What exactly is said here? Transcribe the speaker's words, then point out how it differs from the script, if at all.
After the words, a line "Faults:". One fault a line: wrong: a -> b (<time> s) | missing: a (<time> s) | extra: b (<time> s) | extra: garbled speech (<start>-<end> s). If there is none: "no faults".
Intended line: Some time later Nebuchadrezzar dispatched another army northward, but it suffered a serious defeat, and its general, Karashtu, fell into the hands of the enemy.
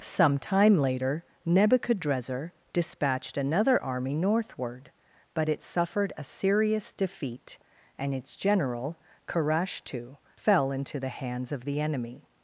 Some time later Nebuchadrezzar dispatched another army northward, but it suffered a serious defeat, and its general, Karashtu, fell into the hands of the enemy.
Faults:
no faults